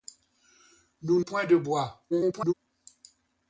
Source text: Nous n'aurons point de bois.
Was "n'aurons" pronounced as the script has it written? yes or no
no